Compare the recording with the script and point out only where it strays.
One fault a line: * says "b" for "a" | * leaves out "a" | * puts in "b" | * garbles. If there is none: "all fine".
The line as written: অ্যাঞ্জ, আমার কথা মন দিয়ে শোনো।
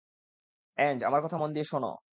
all fine